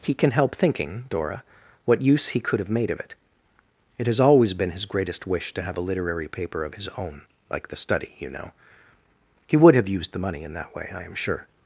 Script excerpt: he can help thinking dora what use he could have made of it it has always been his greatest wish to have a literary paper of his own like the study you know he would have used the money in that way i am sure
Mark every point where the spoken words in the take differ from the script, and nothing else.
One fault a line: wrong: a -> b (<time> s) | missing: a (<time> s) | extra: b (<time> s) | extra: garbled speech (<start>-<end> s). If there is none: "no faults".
no faults